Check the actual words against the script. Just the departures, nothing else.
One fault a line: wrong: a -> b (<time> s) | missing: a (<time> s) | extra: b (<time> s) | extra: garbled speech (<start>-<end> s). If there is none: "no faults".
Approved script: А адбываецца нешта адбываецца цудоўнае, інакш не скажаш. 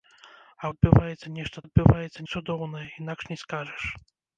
no faults